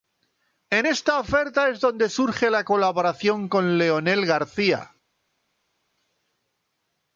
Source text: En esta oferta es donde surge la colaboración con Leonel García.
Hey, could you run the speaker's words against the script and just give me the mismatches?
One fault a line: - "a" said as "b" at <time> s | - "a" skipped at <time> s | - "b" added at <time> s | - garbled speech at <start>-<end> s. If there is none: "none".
none